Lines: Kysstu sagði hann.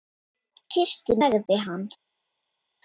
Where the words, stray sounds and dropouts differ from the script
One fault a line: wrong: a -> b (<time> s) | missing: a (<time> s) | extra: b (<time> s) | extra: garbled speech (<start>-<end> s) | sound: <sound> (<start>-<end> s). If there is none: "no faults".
no faults